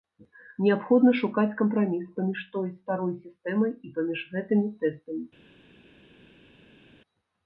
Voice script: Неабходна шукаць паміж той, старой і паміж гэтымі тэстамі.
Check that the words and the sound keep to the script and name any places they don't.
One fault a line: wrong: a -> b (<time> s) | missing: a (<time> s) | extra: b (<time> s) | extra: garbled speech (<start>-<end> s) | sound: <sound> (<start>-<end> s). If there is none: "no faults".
extra: кампраміс (1.6 s)
extra: сістэмай (3.3 s)